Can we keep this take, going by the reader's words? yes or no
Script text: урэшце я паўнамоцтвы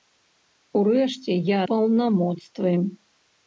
yes